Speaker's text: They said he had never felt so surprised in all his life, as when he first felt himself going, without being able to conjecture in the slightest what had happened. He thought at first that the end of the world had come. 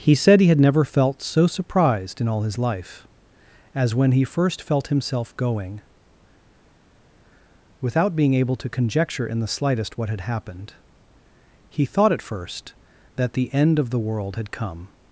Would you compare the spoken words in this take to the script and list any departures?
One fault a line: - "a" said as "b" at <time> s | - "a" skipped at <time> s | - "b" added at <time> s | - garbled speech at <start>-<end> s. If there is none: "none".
- "They" said as "He" at 0.0 s